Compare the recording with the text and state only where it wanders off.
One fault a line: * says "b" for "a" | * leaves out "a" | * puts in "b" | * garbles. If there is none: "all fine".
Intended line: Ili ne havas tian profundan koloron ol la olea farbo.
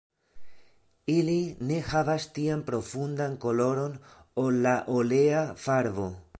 all fine